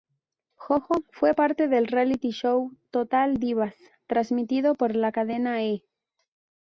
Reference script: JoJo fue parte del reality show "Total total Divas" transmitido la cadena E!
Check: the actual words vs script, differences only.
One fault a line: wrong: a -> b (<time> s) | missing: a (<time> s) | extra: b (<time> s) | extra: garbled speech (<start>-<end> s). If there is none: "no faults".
missing: total (3.4 s)
extra: por (4.7 s)